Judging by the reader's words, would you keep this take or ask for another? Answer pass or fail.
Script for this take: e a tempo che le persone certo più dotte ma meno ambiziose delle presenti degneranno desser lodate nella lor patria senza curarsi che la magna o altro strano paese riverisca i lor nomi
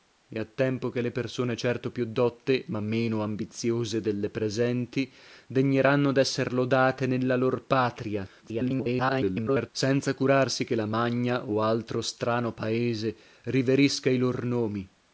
fail